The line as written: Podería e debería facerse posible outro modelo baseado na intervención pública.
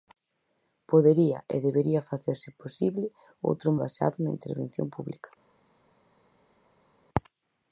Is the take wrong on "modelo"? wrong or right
wrong